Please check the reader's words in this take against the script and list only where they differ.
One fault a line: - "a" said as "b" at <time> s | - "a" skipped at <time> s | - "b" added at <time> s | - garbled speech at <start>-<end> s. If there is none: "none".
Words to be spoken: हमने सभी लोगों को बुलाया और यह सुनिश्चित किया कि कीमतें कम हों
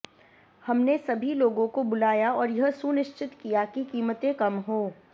none